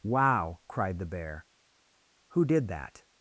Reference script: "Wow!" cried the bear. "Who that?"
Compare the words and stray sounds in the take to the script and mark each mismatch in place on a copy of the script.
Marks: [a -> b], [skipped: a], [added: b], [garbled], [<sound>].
"Wow!" cried the bear. "Who [added: did] that?"